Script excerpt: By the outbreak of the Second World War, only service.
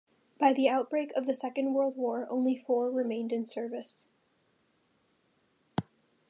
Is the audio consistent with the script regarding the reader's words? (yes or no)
no